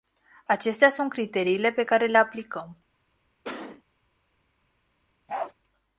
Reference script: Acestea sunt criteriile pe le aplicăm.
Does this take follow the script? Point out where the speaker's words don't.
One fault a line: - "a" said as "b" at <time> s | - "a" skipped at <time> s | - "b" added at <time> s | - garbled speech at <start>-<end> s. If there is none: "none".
- "care" added at 1.8 s